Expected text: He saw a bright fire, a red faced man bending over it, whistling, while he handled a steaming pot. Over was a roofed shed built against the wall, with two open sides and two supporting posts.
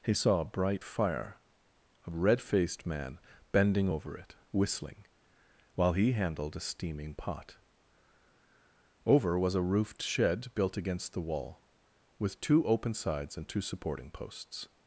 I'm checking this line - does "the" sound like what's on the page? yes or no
yes